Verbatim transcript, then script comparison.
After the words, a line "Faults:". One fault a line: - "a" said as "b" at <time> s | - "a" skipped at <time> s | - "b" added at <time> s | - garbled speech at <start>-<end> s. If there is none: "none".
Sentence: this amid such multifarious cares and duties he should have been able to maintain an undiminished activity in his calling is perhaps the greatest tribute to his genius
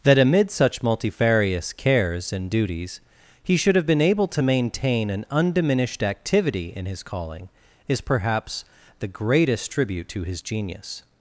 that amid such multifarious cares and duties he should have been able to maintain an undiminished activity in his calling is perhaps the greatest tribute to his genius
Faults:
- "this" said as "that" at 0.0 s